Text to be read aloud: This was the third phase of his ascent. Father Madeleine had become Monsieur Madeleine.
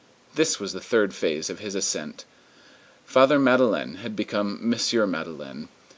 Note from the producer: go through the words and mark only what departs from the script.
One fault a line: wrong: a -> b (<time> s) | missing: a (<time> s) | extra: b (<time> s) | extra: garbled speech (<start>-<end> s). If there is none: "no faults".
no faults